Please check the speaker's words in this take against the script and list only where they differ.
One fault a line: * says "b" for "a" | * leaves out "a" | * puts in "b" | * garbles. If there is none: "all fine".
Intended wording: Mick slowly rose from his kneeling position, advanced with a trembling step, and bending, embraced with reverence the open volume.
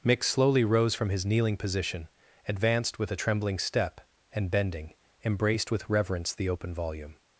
all fine